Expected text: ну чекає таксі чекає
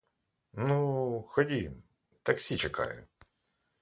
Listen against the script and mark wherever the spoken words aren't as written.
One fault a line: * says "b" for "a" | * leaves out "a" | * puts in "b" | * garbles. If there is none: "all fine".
* says "ходім" for "чекає"